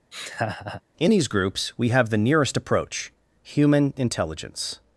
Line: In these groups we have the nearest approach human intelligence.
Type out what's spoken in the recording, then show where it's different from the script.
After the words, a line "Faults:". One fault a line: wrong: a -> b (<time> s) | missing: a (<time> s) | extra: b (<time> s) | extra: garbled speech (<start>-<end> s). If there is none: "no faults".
In these groups we have the nearest approach human intelligence.
Faults:
no faults